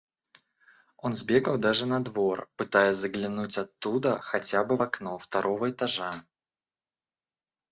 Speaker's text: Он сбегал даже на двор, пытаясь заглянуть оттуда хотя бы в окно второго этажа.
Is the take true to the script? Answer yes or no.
yes